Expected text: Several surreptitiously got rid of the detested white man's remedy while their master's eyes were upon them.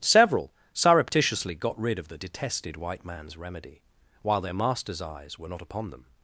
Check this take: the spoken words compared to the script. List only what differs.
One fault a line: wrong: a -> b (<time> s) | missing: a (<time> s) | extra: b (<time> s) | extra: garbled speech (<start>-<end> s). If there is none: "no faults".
extra: not (5.5 s)